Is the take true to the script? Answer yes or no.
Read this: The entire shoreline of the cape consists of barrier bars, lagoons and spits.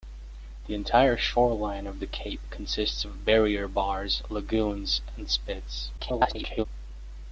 no